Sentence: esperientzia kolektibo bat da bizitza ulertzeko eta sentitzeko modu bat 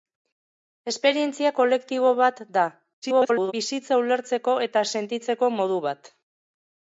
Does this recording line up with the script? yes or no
no